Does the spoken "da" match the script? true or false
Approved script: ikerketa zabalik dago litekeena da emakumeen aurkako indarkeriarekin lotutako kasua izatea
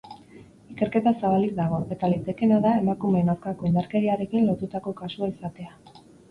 true